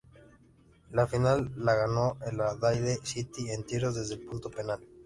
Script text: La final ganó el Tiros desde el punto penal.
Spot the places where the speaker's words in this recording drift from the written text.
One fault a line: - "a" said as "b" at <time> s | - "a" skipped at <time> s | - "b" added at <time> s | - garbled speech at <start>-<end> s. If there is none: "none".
- "la" added at 1.6 s
- "Adelaide City en" added at 2.4 s